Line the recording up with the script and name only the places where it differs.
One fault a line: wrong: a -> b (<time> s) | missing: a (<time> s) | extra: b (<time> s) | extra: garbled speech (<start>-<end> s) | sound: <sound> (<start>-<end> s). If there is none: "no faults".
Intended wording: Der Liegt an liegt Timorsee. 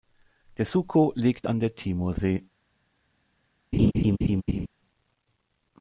extra: Suco (0.7 s)
wrong: liegt -> der (1.6 s)
sound: laugh (3.7-4.7 s)